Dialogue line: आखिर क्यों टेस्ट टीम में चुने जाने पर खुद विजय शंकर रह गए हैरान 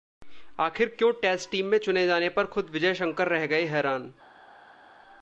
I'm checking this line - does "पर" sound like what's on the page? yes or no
yes